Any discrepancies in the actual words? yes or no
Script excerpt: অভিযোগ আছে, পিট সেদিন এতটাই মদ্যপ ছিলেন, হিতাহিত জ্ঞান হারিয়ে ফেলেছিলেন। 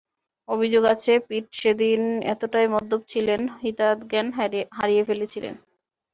no